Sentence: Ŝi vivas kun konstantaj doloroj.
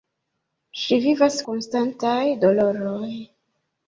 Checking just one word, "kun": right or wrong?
wrong